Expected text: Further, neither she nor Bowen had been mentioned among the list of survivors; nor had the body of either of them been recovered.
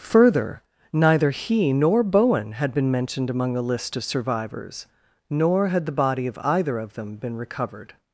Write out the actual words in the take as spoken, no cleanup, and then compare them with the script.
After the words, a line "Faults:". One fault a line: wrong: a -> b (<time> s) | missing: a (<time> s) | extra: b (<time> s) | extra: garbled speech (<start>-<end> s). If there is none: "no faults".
Further, neither he nor Bowen had been mentioned among the list of survivors; nor had the body of either of them been recovered.
Faults:
wrong: she -> he (1.3 s)